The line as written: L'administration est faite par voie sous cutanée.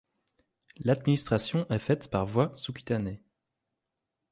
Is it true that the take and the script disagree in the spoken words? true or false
false